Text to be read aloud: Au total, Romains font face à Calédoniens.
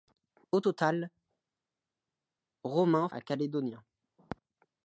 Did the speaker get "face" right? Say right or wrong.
wrong